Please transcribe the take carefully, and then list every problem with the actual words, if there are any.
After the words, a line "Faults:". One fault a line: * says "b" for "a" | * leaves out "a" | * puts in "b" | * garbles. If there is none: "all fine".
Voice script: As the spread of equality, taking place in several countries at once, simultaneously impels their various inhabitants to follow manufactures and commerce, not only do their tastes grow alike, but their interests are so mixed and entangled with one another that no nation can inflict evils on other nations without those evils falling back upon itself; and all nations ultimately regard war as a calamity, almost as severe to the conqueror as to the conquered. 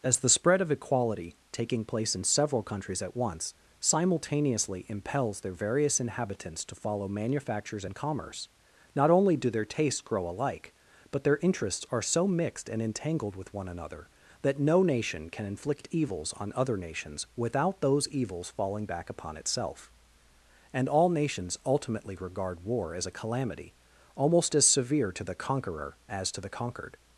As the spread of equality, taking place in several countries at once, simultaneously impels their various inhabitants to follow manufactures and commerce, not only do their tastes grow alike, but their interests are so mixed and entangled with one another that no nation can inflict evils on other nations without those evils falling back upon itself; and all nations ultimately regard war as a calamity, almost as severe to the conqueror as to the conquered.
Faults:
all fine